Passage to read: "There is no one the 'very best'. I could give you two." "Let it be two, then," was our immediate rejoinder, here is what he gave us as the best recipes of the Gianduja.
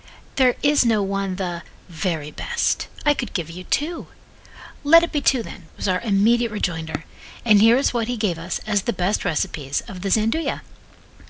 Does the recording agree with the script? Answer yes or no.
no